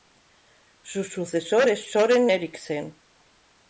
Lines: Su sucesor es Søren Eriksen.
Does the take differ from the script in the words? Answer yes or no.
no